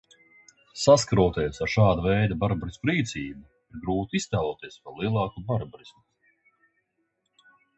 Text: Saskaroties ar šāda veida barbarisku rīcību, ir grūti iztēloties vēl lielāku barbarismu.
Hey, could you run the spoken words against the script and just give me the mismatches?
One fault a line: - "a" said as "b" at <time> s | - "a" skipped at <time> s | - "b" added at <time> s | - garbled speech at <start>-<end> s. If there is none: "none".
none